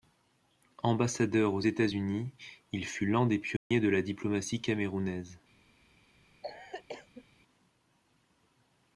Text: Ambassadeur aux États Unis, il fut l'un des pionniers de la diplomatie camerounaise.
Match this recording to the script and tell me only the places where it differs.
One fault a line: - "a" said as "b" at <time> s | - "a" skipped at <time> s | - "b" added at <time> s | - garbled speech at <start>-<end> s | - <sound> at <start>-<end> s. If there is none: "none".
- dropout at 3.6-3.7 s
- cough at 6.4-7.2 s